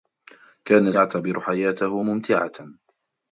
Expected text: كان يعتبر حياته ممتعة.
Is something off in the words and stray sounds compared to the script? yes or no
no